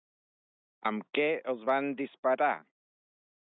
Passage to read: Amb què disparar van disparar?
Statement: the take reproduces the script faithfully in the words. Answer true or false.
false